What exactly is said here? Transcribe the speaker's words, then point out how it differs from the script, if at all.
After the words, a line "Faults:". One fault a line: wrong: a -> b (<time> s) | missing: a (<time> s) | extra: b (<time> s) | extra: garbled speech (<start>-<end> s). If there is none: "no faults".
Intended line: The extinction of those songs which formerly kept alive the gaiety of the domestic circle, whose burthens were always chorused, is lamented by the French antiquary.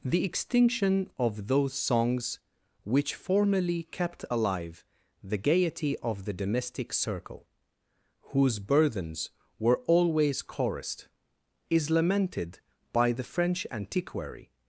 The extinction of those songs which formerly kept alive the gaiety of the domestic circle, whose burthens were always chorused, is lamented by the French antiquary.
Faults:
no faults